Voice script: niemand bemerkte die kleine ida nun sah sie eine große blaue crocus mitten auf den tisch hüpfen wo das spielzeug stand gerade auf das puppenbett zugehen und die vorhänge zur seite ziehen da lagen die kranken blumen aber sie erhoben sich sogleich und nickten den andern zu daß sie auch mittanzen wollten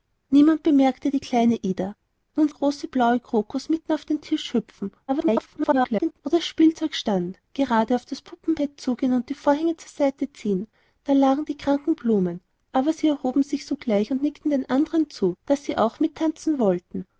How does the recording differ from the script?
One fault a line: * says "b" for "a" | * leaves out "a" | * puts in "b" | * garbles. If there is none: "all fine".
* leaves out "sah sie eine"
* garbles